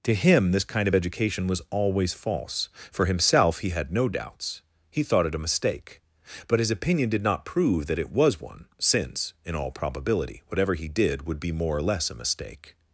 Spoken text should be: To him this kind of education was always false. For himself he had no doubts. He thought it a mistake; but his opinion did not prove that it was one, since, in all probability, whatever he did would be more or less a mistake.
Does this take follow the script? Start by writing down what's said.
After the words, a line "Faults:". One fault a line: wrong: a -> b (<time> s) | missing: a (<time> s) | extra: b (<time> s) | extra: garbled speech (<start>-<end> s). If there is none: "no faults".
To him this kind of education was always false. For himself he had no doubts. He thought it a mistake; but his opinion did not prove that it was one, since, in all probability, whatever he did would be more or less a mistake.
Faults:
no faults